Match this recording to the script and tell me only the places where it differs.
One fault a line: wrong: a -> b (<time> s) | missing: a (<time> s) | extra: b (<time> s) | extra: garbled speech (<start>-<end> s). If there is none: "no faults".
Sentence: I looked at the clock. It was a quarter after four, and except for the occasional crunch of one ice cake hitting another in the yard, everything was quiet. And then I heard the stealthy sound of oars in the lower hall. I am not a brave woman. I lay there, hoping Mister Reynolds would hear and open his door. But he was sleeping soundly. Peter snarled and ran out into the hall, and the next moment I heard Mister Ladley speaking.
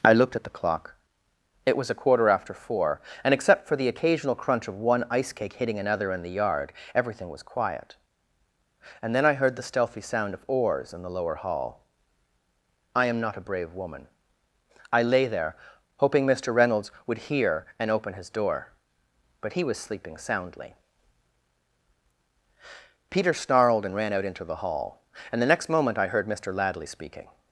no faults